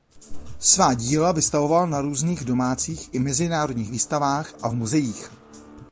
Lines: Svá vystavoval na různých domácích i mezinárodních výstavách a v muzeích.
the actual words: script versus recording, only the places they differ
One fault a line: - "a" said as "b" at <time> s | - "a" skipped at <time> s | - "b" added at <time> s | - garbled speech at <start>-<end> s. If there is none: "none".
- "díla" added at 0.9 s